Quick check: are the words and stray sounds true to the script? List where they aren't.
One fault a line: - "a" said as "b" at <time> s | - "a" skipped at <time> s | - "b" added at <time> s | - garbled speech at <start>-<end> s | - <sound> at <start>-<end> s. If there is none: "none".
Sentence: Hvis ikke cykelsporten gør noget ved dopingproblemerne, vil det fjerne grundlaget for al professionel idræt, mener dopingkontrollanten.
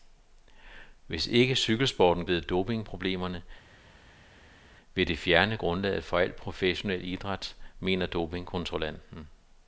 - "gør noget" skipped at 2.2 s